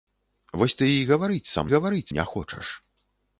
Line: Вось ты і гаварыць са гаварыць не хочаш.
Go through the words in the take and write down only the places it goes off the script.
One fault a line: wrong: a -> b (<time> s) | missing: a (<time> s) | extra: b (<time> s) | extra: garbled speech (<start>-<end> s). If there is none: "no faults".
no faults